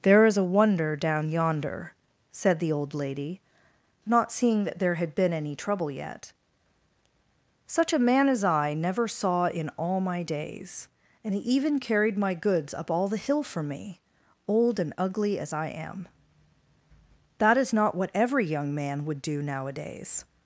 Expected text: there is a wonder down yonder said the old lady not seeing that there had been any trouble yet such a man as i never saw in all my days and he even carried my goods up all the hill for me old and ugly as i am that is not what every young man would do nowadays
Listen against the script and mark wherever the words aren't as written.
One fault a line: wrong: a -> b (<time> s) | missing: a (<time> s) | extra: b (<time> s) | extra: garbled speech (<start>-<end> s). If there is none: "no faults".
no faults